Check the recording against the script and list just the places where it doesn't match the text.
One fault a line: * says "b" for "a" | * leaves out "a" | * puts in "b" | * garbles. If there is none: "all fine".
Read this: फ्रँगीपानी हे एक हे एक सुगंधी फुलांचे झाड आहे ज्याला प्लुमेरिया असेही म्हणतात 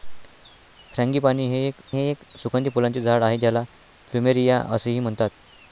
all fine